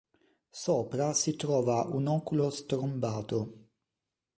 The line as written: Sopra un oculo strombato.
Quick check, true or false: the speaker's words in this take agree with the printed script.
false